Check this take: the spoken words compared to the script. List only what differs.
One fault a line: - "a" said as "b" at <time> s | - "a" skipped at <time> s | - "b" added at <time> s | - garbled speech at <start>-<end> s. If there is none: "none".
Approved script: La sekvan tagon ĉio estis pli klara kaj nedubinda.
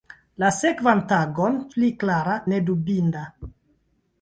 - "ĉio estis" skipped at 1.6 s
- "kaj" skipped at 2.4 s